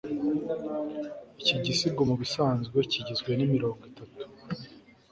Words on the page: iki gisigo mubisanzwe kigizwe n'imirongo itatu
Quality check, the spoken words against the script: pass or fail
pass